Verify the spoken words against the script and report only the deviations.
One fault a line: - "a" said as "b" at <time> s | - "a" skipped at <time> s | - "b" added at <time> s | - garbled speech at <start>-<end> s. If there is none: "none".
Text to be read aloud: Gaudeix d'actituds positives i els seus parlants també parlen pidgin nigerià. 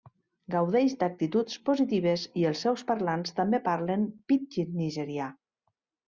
none